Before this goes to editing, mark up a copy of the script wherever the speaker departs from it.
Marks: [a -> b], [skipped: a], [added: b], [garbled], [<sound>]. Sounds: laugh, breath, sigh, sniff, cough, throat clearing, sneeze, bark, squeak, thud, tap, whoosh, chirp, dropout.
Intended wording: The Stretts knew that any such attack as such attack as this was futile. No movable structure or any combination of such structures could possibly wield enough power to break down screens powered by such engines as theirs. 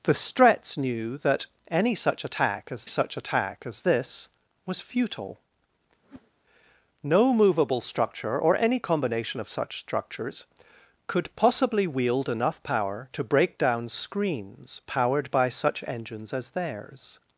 The Stretts knew that any such attack as such attack as this was futile. [whoosh] No movable structure or any combination of such structures could possibly wield enough power to break down screens powered by such engines as theirs.